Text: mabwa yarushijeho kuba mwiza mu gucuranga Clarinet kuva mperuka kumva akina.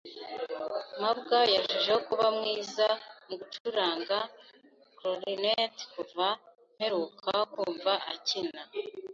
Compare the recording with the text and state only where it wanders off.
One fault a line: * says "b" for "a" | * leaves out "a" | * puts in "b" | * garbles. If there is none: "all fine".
all fine